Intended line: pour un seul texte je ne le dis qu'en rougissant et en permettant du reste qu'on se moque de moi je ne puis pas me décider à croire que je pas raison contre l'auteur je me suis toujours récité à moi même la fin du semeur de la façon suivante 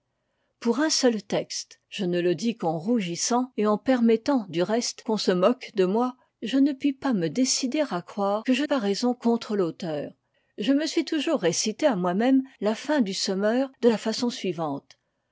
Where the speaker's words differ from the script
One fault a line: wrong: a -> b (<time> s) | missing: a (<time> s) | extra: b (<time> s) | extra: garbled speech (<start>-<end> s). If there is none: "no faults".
no faults